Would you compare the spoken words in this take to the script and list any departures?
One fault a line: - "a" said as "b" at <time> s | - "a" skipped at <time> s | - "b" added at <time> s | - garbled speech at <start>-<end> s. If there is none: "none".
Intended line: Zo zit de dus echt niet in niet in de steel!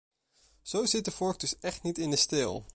- "vork" added at 1.1 s
- "niet in" skipped at 2.1 s